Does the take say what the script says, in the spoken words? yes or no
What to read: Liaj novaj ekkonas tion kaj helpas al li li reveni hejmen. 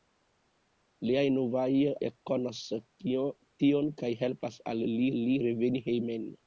yes